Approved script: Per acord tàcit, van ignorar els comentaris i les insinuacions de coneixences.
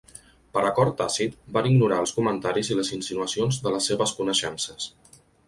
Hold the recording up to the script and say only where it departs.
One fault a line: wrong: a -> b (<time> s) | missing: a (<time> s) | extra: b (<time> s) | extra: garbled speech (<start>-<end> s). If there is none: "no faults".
extra: les seves (3.8 s)